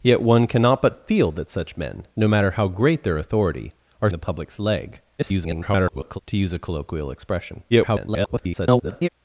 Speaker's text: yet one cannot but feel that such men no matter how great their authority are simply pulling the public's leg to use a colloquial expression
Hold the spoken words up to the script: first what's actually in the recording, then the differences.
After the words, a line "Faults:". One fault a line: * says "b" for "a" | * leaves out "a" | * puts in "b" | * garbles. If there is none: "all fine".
yet one cannot but feel that such men no matter how great their authority are the public's leg [garbled] to use a colloquial expression [garbled]
Faults:
* leaves out "simply pulling"
* garbles
* garbles